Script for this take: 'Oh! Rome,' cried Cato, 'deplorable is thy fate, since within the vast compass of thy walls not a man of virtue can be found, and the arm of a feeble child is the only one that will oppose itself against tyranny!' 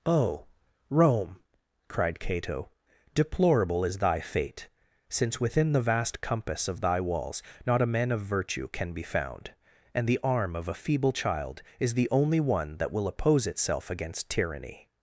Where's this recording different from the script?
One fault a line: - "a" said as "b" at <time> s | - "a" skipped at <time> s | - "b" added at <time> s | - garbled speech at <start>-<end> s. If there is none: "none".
none